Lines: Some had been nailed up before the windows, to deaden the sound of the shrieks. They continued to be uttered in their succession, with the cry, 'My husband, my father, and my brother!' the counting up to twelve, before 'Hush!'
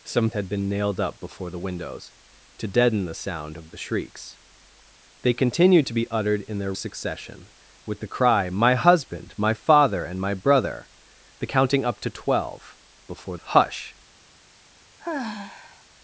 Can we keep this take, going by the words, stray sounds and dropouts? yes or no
no